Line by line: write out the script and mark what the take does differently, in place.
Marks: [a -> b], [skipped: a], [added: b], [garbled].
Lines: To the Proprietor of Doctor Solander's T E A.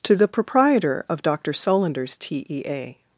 To the Proprietor of Doctor Solander's T E A.